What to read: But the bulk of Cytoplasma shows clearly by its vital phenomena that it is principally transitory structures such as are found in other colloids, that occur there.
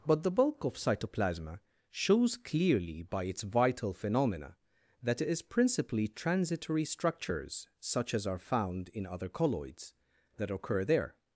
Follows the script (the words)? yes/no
yes